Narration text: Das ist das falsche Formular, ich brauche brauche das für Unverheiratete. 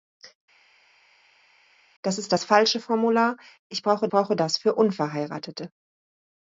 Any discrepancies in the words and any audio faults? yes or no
no